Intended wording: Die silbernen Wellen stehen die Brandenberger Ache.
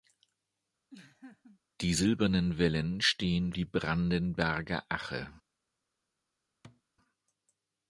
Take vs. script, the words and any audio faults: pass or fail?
fail